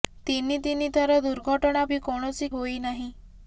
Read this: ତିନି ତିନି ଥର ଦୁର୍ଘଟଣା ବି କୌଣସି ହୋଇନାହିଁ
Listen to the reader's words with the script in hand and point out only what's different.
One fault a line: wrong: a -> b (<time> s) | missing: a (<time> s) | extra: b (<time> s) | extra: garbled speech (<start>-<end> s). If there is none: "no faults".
no faults